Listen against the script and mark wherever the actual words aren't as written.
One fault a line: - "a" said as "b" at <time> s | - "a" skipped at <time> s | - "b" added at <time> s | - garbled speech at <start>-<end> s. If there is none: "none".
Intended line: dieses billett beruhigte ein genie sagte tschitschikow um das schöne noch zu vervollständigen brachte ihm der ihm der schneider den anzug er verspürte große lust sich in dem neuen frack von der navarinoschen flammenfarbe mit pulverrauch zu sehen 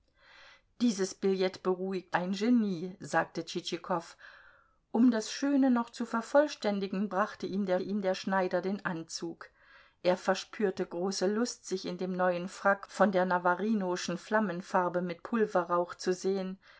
none